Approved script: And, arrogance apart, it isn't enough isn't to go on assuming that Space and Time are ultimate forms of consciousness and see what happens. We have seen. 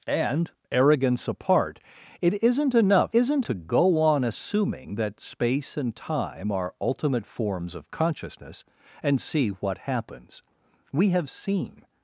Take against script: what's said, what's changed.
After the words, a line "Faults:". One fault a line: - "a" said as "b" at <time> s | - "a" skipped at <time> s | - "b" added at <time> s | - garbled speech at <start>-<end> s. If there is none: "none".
And, arrogance apart, it isn't enough isn't to go on assuming that Space and Time are ultimate forms of consciousness and see what happens. We have seen.
Faults:
none